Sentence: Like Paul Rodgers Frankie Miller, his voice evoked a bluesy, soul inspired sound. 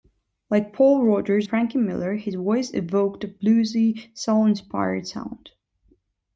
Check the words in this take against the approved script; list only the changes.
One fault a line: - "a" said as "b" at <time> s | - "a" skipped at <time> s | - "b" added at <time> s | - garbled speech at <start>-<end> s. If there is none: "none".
none